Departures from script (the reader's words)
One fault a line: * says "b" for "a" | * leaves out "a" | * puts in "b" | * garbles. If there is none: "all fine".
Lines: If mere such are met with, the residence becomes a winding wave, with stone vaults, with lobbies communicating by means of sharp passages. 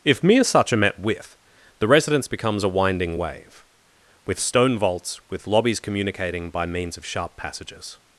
all fine